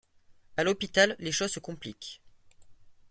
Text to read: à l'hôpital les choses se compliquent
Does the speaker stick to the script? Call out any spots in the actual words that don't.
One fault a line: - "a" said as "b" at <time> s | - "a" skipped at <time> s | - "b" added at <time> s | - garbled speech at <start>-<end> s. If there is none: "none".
none